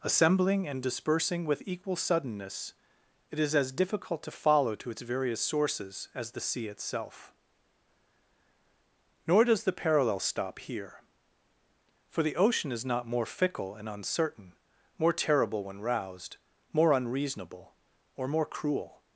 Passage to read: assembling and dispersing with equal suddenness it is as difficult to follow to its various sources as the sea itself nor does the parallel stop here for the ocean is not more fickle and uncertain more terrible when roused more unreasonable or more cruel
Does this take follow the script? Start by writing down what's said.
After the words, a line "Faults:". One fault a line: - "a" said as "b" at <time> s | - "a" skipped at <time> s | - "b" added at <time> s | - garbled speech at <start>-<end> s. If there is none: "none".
assembling and dispersing with equal suddenness it is as difficult to follow to its various sources as the sea itself nor does the parallel stop here for the ocean is not more fickle and uncertain more terrible when roused more unreasonable or more cruel
Faults:
none